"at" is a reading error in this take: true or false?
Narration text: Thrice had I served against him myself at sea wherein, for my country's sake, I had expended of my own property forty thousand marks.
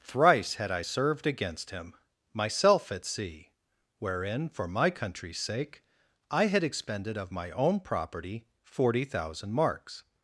false